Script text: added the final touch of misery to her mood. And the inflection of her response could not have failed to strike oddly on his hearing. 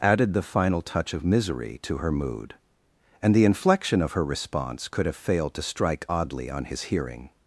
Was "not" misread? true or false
true